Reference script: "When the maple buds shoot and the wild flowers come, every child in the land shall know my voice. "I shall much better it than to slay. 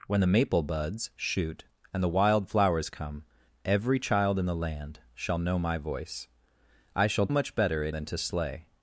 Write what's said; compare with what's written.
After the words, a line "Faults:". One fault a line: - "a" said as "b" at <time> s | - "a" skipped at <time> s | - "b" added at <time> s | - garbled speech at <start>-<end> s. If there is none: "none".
"When the maple buds shoot and the wild flowers come, every child in the land shall know my voice. "I shall much better it than to slay.
Faults:
none